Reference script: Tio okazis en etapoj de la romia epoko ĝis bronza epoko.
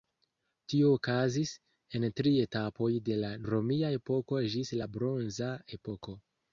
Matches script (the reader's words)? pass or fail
fail